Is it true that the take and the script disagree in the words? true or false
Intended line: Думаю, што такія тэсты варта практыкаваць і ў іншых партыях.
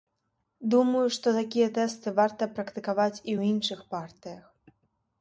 false